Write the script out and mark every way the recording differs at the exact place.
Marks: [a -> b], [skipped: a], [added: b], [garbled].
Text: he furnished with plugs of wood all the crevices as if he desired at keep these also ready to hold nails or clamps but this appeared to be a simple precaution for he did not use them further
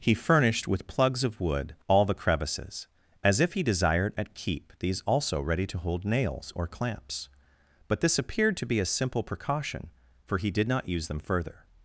he furnished with plugs of wood all the crevices as if he desired at keep these also ready to hold nails or clamps but this appeared to be a simple precaution for he did not use them further